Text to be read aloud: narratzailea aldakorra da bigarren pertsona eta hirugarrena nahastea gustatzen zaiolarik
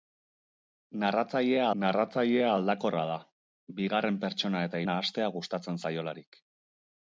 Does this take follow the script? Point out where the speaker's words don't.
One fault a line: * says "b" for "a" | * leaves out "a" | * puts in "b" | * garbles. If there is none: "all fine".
* puts in "narratzailea"
* leaves out "hirugarrena"